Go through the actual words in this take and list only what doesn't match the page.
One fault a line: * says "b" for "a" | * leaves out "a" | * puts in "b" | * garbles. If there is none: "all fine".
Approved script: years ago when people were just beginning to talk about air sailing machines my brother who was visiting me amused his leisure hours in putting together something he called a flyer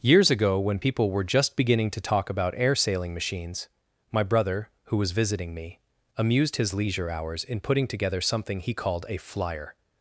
all fine